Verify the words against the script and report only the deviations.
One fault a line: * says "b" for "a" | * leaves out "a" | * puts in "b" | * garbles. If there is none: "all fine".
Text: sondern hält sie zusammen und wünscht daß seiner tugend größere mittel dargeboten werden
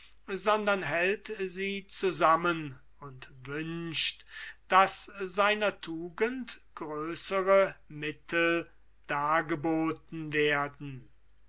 all fine